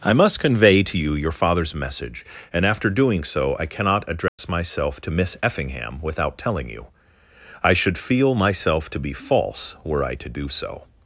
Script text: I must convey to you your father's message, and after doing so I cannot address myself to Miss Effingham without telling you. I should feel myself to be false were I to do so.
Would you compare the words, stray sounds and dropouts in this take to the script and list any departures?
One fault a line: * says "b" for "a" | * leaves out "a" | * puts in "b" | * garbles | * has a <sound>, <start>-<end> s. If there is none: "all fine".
* has a dropout, 4.3-4.4 s